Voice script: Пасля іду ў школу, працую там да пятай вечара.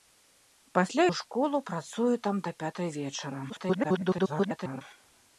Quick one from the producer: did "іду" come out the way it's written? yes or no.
no